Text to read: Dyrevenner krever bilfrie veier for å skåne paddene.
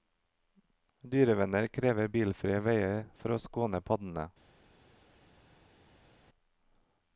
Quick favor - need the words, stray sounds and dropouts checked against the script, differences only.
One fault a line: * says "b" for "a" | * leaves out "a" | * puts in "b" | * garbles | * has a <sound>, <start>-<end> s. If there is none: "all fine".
all fine